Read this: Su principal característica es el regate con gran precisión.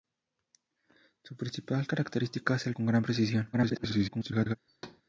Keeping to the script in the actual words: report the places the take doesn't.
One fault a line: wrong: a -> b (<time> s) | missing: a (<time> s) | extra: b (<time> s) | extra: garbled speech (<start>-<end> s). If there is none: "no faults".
missing: regate (2.7 s)
extra: garbled speech (3.5-4.6 s)